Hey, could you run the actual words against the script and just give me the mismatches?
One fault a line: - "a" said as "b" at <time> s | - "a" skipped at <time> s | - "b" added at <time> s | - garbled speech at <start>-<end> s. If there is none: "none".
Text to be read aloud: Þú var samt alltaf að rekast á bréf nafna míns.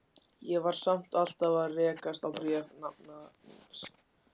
- "Þú" said as "Ég" at 0.5 s